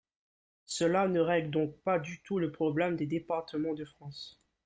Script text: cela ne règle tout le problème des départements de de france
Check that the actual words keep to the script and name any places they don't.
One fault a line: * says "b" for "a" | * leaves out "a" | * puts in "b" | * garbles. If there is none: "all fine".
* puts in "donc pas du"
* leaves out "de"